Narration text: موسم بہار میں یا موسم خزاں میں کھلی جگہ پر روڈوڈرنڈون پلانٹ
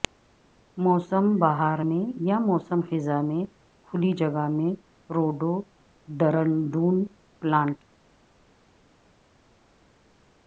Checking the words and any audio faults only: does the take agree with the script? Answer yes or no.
no